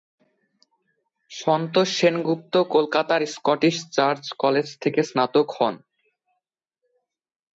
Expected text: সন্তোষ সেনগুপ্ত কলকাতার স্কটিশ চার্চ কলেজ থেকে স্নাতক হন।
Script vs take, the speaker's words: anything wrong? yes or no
no